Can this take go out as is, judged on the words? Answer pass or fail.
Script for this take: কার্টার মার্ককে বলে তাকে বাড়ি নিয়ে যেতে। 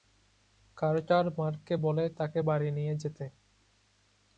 pass